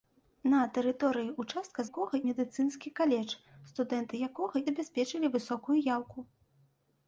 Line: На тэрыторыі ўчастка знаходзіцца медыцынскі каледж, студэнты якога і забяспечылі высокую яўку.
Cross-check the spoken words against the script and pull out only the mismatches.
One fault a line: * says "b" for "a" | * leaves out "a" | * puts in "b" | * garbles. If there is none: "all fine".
* says "якога" for "знаходзіцца"
* leaves out "і"